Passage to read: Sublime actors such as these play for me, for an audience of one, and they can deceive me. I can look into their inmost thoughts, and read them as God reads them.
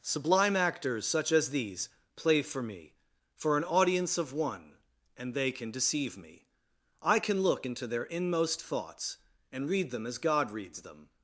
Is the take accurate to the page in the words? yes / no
yes